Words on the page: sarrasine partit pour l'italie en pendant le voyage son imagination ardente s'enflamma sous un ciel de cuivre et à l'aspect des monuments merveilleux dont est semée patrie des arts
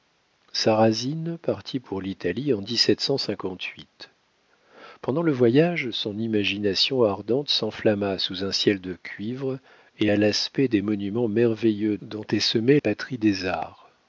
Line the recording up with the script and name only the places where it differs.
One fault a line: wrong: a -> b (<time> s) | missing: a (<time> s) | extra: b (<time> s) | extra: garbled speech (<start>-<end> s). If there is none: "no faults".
no faults